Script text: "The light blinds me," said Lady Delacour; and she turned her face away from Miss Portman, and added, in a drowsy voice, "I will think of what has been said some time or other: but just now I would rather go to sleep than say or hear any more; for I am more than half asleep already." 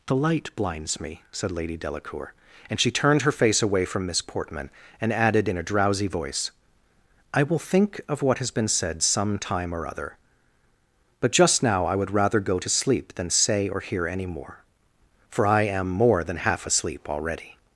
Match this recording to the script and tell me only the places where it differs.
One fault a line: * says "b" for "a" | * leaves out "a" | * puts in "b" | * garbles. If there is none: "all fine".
all fine